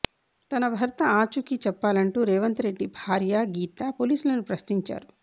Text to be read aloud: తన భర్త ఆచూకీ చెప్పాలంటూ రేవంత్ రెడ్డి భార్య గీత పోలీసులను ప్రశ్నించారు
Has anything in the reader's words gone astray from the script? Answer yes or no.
no